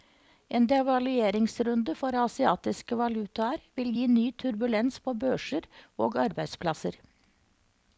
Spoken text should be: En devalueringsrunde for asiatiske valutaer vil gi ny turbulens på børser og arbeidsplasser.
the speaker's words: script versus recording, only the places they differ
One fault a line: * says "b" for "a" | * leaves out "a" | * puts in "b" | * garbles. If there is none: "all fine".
all fine